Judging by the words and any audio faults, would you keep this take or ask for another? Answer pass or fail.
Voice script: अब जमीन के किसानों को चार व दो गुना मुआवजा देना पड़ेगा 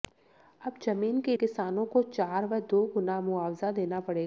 pass